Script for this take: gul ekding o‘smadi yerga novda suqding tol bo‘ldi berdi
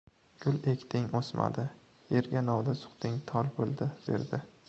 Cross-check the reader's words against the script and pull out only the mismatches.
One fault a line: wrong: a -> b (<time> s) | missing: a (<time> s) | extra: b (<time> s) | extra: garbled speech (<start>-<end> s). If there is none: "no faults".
no faults